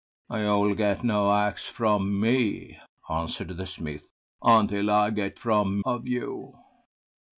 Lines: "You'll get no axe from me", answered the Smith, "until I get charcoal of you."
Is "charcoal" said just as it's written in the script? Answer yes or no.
no